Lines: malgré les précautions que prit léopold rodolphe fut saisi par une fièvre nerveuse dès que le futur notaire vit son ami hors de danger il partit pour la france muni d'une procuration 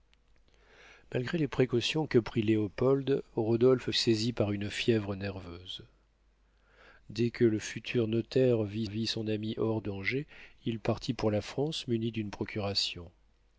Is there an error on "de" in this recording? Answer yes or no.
yes